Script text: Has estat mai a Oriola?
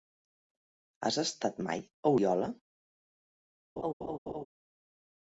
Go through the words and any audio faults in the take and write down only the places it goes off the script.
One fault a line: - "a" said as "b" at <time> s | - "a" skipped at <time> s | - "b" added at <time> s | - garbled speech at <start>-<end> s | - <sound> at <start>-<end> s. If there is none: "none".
- laugh at 3.8-4.4 s